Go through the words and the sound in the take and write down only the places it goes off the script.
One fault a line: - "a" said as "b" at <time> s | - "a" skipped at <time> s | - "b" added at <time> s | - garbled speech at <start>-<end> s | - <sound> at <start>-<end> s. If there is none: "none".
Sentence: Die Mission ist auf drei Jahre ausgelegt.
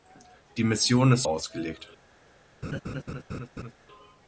- "auf drei Jahre" skipped at 1.3 s
- laugh at 2.6-3.7 s